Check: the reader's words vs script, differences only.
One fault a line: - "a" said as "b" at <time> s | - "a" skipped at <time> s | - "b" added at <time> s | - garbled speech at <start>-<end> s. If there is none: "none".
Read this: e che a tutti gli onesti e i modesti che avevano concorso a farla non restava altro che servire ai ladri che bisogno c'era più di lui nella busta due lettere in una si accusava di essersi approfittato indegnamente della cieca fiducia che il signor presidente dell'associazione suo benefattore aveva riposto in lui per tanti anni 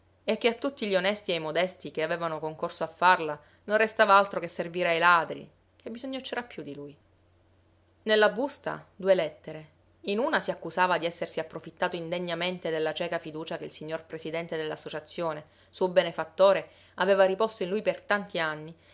none